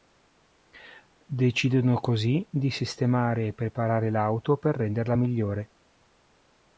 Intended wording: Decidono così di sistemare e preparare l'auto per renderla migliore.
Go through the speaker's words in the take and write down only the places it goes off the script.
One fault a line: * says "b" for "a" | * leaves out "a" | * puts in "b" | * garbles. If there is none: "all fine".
all fine